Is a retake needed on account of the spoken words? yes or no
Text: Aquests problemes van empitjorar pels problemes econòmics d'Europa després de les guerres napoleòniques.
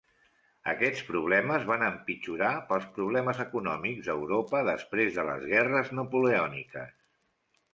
no